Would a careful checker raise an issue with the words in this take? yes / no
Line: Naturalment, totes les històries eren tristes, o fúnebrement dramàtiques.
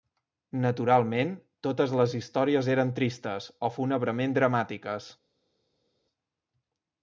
no